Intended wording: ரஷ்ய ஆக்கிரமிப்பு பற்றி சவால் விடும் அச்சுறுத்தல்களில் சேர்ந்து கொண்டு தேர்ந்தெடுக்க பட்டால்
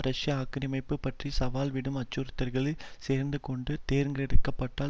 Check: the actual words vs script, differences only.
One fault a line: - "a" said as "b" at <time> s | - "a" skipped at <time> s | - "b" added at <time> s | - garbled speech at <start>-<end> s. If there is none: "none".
none